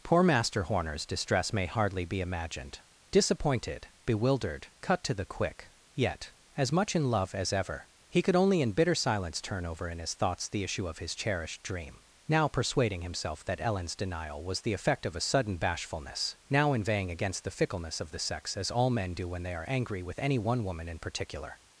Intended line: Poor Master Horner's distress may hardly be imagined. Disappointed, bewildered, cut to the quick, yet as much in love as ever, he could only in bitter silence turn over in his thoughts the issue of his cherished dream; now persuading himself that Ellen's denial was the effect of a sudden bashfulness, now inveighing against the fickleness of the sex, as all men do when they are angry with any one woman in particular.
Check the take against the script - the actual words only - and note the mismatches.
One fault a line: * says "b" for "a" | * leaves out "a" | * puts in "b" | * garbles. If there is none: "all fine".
all fine